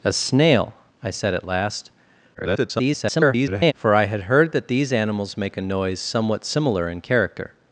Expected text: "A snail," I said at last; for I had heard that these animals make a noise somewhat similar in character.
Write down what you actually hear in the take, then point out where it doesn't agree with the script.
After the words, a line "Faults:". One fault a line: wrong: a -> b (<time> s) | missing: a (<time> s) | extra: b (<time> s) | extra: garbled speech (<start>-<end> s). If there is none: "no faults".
"A snail," I said at last; [garbled] for I had heard that these animals make a noise somewhat similar in character.
Faults:
extra: garbled speech (2.3-3.7 s)